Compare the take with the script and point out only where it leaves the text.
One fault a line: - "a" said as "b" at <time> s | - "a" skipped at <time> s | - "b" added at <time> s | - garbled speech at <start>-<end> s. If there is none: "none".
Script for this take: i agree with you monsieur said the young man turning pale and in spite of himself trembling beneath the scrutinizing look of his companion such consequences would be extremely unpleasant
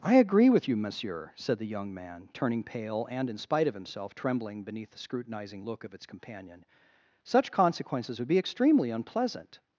- "his" said as "its" at 5.9 s